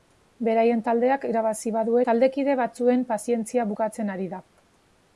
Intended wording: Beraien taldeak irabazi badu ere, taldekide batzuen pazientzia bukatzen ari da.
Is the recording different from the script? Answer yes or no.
yes